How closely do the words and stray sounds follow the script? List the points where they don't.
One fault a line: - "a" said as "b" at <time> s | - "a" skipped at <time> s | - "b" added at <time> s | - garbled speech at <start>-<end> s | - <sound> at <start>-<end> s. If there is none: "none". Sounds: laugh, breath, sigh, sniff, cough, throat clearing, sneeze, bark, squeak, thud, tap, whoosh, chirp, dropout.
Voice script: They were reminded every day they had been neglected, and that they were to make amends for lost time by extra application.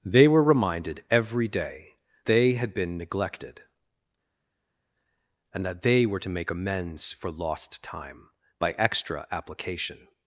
none